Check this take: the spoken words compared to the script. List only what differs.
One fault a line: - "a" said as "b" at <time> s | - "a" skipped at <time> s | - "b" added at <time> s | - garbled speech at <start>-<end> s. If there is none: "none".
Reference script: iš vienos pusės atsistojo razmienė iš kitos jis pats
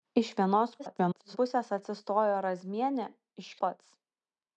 - garbled speech at 0.8-1.4 s
- "kitos jis" skipped at 3.5 s